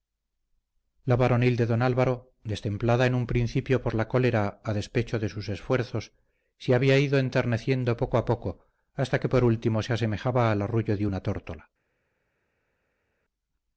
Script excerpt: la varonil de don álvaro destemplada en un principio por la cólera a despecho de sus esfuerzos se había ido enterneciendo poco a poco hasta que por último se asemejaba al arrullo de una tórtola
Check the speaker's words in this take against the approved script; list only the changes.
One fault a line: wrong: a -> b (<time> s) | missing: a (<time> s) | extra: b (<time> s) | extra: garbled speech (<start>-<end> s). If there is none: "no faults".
no faults